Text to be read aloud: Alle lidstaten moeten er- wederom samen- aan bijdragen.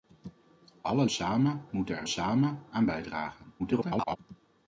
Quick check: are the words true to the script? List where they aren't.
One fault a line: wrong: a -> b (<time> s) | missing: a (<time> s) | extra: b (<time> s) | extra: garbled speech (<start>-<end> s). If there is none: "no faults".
wrong: lidstaten -> samen (1.1 s)
missing: wederom (2.1 s)
extra: garbled speech (3.6-4.2 s)